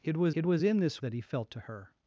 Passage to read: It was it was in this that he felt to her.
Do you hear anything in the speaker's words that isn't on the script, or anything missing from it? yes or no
no